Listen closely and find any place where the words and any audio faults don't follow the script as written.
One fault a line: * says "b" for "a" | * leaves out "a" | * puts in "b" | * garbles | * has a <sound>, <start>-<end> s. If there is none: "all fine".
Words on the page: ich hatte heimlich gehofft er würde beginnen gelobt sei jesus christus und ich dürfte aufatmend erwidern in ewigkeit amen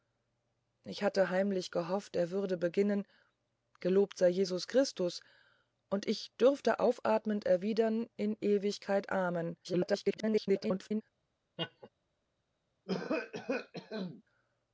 * garbles
* has a laugh, 11.6-11.9 s
* has a cough, 12.9-14.2 s